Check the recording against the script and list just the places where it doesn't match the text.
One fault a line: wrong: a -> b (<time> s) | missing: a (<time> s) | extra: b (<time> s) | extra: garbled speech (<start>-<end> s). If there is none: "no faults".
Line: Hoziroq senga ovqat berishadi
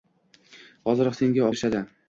missing: ovqat (1.5 s)